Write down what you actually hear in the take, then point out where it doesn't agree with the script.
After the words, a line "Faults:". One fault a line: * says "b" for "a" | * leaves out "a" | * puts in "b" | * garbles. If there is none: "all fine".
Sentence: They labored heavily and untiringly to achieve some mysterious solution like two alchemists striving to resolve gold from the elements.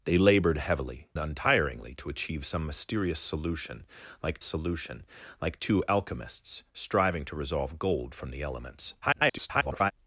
They labored heavily untiringly to achieve some mysterious solution like solution like two alchemists striving to resolve gold from the elements. [garbled]
Faults:
* leaves out "and"
* puts in "solution like"
* garbles